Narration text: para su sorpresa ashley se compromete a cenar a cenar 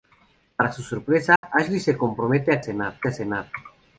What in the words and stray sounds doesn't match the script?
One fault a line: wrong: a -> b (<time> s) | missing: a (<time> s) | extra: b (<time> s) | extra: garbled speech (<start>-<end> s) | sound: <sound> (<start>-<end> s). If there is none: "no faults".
sound: dropout (1.4-1.4 s)